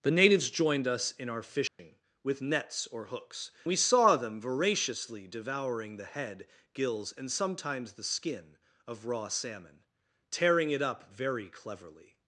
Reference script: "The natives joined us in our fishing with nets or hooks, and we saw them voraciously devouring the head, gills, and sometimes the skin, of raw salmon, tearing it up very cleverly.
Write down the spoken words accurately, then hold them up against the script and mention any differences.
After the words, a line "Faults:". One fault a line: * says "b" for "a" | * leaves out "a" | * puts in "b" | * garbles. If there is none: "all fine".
"The natives joined us in our fishing with nets or hooks, we saw them voraciously devouring the head, gills, and sometimes the skin, of raw salmon, tearing it up very cleverly.
Faults:
* leaves out "and"